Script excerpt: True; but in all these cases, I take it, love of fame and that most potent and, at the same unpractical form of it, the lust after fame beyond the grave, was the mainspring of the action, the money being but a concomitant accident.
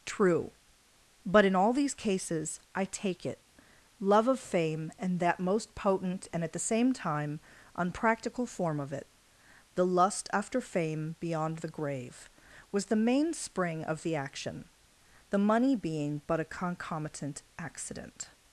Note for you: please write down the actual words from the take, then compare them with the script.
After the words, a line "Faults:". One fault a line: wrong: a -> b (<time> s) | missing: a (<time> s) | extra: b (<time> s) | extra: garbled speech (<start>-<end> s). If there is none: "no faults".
True; but in all these cases, I take it, love of fame and that most potent and, at the same time, unpractical form of it, the lust after fame beyond the grave, was the mainspring of the action, the money being but a concomitant accident.
Faults:
extra: time (6.9 s)